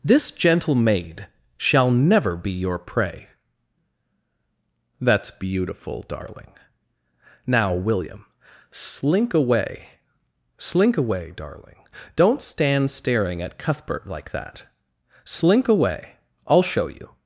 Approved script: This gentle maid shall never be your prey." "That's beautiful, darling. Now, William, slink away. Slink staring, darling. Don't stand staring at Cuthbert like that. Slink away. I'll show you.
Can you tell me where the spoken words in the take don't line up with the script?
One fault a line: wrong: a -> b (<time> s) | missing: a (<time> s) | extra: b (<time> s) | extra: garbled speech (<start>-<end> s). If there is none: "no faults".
wrong: staring -> away (11.0 s)